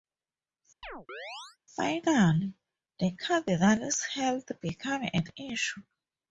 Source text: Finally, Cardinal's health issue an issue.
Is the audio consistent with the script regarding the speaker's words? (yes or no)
no